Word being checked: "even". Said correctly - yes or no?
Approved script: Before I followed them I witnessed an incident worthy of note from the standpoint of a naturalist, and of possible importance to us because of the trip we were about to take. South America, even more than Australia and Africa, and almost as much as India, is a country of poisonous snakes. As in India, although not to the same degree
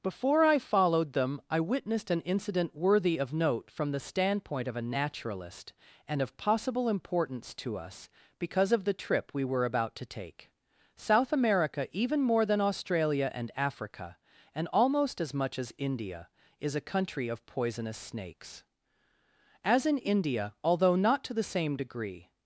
yes